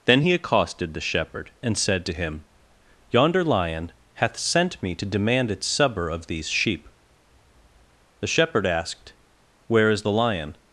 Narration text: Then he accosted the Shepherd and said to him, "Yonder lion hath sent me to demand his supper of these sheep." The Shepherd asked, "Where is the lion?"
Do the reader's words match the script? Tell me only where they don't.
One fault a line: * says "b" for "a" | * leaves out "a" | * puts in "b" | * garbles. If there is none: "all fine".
* says "its" for "his"